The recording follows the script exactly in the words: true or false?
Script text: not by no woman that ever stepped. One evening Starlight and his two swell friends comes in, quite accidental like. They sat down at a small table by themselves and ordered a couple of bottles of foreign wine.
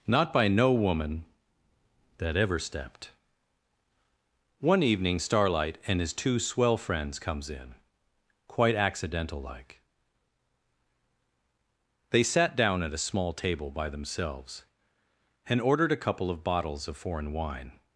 true